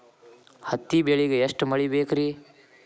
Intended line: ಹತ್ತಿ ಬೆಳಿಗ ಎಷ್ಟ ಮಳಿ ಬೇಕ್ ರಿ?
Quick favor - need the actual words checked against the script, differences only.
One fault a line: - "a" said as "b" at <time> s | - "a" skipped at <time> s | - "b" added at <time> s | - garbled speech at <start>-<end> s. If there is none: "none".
none